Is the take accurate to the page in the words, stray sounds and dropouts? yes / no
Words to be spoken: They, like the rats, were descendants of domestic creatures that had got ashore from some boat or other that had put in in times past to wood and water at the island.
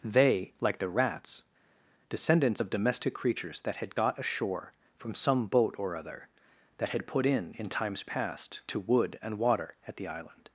no